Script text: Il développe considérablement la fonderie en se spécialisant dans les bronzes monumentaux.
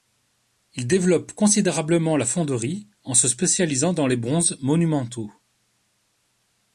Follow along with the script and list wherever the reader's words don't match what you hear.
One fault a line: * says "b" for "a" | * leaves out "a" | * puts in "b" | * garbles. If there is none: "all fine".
all fine